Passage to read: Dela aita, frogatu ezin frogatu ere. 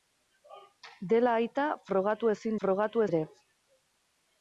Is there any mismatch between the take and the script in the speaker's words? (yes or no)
no